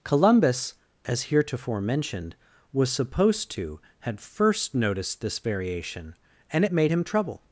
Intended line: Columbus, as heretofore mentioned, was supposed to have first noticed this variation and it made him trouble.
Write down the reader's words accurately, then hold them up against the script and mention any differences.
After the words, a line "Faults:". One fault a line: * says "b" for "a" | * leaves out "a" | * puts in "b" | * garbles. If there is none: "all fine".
Columbus, as heretofore mentioned, was supposed to had first noticed this variation and it made him trouble.
Faults:
* says "had" for "have"